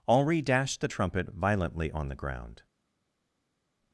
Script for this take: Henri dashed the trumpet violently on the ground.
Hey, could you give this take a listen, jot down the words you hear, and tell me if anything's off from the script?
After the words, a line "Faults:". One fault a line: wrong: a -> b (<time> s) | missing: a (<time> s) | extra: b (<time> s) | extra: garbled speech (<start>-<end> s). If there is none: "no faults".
Henri dashed the trumpet violently on the ground.
Faults:
no faults